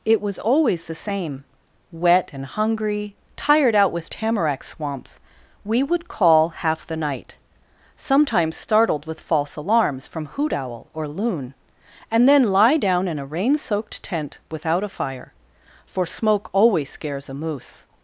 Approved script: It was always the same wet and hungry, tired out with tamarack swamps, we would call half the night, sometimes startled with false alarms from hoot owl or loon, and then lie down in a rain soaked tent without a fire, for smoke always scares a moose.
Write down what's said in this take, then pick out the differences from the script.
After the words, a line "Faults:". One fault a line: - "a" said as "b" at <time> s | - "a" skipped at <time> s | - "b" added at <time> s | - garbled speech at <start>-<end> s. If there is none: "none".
It was always the same wet and hungry, tired out with tamarack swamps, we would call half the night, sometimes startled with false alarms from hoot owl or loon, and then lie down in a rain soaked tent without a fire, for smoke always scares a moose.
Faults:
none